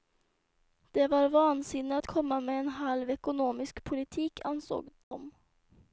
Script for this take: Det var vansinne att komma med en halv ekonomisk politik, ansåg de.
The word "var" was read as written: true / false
true